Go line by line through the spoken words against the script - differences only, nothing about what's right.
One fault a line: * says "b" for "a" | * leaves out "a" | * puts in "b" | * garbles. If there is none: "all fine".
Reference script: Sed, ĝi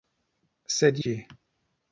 all fine